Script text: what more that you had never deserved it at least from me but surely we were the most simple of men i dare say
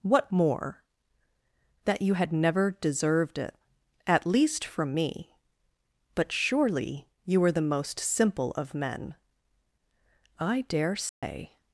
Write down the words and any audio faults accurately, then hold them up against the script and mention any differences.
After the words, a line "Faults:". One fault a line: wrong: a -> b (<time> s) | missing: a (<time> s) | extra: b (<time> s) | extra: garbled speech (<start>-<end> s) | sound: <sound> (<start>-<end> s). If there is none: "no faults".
what more that you had never deserved it at least from me but surely you were the most simple of men i dare say
Faults:
wrong: we -> you (7.2 s)
sound: dropout (11.1-11.2 s)